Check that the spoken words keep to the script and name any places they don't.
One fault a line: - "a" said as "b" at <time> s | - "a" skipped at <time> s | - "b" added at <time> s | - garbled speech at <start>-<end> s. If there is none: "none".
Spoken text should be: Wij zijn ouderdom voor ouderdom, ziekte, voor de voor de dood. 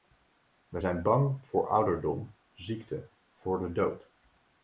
- "ouderdom" said as "bang" at 1.0 s
- "voor de" skipped at 3.7 s